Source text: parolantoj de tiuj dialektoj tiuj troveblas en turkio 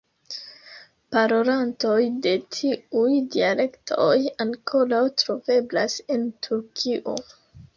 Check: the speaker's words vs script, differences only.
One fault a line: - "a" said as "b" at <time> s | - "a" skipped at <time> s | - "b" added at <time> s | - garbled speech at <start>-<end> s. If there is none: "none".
- "tiuj" said as "ankoraŭ" at 4.5 s